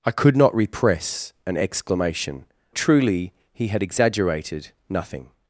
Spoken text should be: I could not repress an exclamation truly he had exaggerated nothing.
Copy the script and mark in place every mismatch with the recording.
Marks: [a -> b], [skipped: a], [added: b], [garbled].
I could not repress an exclamation truly he had exaggerated nothing.